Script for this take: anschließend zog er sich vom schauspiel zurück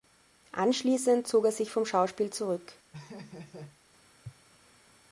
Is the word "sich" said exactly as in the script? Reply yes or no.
yes